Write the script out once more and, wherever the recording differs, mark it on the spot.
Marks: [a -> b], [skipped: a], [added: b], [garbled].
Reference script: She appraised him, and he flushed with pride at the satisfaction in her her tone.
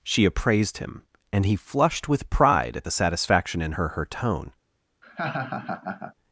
She appraised him, and he flushed with pride at the satisfaction in her her tone.